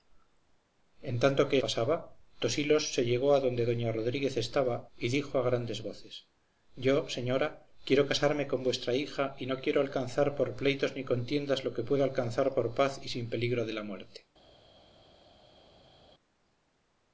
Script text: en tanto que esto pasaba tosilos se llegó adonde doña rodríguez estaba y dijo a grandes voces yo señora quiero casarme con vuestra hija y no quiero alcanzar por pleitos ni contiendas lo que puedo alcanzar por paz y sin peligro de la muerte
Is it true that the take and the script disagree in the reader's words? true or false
true